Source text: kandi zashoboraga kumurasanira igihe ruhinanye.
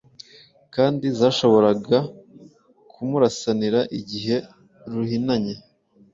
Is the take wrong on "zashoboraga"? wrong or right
right